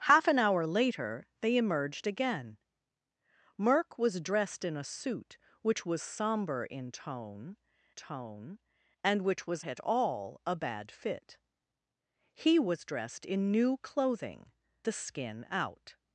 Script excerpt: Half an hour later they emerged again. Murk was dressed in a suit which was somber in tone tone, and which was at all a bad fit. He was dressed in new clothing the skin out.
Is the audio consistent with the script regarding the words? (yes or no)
yes